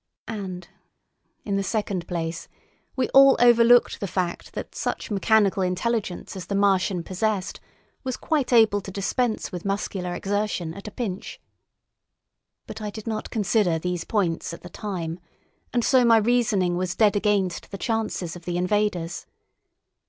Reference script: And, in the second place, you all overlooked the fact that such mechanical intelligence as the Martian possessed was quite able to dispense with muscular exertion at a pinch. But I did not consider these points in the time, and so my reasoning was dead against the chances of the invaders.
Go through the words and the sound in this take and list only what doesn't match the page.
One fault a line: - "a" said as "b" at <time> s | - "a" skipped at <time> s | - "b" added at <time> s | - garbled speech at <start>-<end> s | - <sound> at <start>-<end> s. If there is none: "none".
- "you" said as "we" at 2.9 s
- "in" said as "at" at 14.5 s